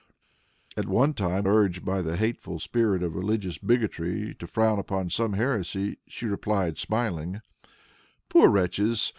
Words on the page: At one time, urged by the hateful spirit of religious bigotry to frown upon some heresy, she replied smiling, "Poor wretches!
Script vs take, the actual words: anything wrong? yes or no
no